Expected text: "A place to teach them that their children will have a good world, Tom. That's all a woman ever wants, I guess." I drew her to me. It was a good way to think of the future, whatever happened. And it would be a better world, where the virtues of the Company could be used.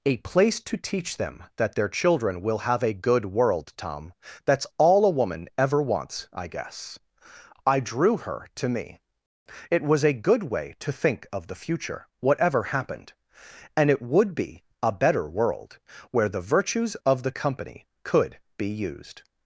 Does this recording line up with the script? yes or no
yes